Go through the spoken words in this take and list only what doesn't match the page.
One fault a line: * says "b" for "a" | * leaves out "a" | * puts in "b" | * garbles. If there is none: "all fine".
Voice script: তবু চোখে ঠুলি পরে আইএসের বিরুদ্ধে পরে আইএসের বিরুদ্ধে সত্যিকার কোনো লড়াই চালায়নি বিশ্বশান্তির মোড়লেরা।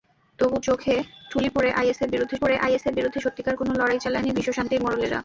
all fine